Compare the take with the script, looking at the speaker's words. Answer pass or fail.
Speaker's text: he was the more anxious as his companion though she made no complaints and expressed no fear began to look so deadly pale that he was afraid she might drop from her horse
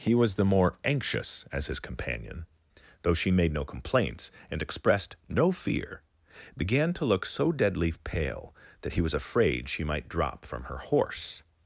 pass